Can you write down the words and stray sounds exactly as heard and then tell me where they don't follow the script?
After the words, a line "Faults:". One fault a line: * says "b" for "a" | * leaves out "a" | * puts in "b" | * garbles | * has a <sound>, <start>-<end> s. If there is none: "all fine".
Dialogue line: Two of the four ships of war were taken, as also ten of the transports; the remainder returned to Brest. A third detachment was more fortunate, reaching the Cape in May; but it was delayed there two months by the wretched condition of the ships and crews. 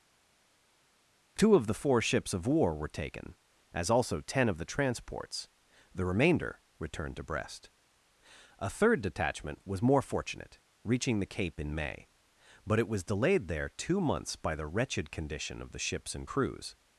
Two of the four ships of war were taken, as also ten of the transports; the remainder returned to Brest. A third detachment was more fortunate, reaching the Cape in May; but it was delayed there two months by the wretched condition of the ships and crews.
Faults:
all fine